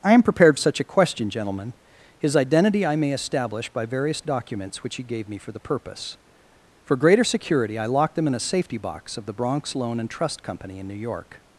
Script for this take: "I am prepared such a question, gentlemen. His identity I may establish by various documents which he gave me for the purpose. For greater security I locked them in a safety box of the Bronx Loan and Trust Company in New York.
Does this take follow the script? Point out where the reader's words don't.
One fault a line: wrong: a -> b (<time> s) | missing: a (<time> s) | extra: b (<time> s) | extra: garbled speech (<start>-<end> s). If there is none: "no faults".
no faults